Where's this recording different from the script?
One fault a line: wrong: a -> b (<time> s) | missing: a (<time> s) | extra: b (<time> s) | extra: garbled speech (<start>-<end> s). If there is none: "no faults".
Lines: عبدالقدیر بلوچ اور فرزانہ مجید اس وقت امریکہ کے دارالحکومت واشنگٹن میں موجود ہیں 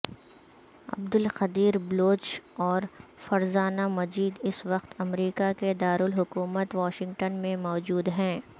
no faults